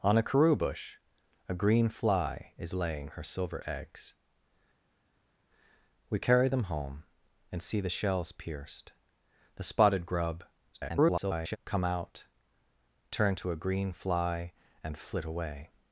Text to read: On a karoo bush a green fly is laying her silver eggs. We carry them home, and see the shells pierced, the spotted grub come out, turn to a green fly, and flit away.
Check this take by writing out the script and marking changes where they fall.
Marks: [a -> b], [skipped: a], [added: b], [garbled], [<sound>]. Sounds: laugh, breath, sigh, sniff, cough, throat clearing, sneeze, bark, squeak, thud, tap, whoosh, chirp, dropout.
On a karoo bush a green fly is laying her silver eggs. We carry them home, and see the shells pierced, the spotted grub [garbled] come out, turn to a green fly, and flit away.